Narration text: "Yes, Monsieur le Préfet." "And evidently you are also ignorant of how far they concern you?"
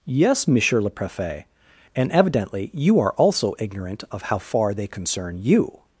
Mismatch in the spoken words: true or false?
false